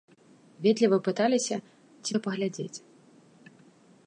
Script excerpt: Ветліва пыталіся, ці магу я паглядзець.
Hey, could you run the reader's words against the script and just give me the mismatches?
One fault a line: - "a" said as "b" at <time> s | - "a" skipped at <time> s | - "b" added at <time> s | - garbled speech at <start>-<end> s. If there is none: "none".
- "магу" skipped at 2.1 s